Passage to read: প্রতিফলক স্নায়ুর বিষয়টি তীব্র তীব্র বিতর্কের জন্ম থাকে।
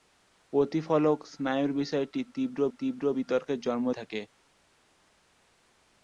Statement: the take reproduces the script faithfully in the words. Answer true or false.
true